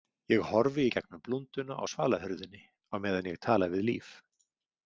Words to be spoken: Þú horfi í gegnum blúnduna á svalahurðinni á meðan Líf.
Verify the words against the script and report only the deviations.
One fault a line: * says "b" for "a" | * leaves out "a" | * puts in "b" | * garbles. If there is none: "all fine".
* says "Ég" for "Þú"
* puts in "ég tala við"